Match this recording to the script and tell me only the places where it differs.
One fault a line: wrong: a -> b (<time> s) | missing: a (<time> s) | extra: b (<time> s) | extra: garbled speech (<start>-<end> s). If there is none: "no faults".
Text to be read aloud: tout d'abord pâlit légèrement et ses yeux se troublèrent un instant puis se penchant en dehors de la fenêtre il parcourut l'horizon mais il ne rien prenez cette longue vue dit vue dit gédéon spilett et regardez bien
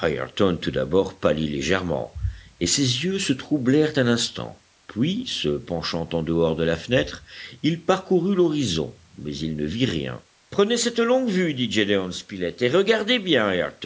extra: vit (9.7 s)
missing: vue dit (11.7 s)